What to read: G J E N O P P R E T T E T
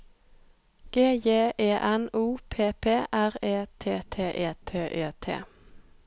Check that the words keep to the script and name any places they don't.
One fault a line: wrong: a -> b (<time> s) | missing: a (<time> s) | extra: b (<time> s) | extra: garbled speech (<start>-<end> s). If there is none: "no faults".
extra: E T (4.9 s)